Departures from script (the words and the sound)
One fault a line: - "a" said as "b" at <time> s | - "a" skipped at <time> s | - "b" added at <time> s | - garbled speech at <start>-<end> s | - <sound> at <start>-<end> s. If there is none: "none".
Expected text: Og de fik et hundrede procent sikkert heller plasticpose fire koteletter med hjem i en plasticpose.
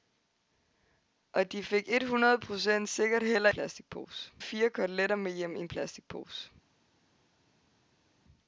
none